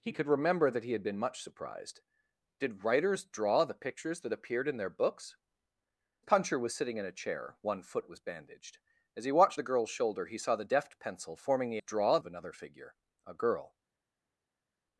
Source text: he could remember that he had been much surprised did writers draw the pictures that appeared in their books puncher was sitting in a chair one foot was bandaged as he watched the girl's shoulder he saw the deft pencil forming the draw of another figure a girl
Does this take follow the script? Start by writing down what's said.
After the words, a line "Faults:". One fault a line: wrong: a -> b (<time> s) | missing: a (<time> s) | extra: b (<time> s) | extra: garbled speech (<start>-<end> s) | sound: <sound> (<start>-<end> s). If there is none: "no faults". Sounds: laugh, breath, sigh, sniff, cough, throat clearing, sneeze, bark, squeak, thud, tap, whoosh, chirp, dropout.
he could remember that he had been much surprised did writers draw the pictures that appeared in their books puncher was sitting in a chair one foot was bandaged as he watched the girl's shoulder he saw the deft pencil forming the draw of another figure a girl
Faults:
no faults